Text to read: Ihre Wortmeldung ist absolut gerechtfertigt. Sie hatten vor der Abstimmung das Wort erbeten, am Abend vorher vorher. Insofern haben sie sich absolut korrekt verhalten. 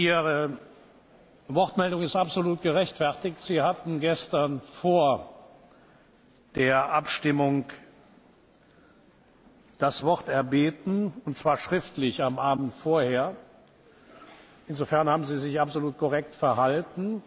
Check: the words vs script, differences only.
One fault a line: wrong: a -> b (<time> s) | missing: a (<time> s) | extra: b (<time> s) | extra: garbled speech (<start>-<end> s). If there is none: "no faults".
extra: gestern (4.0 s)
extra: und zwar schriftlich (11.2 s)
missing: vorher (13.3 s)